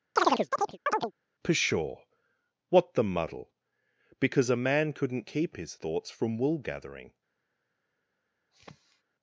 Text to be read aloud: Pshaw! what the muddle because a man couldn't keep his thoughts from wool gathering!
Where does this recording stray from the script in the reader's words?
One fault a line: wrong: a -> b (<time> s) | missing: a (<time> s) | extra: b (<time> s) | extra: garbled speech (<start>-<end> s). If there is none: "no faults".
no faults